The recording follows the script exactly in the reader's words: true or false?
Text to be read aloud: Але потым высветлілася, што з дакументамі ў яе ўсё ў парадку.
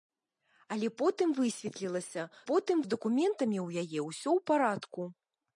false